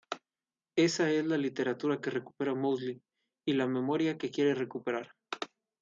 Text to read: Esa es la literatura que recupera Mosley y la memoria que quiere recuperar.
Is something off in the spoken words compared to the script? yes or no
no